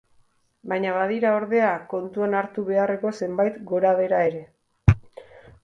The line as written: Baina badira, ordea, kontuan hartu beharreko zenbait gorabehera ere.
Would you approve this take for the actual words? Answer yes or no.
yes